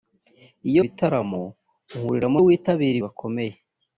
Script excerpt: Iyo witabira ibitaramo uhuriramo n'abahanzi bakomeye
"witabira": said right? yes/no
no